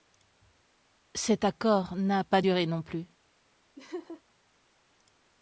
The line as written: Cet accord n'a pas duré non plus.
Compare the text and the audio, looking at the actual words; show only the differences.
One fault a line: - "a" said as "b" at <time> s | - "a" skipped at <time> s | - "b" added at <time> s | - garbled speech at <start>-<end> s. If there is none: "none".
none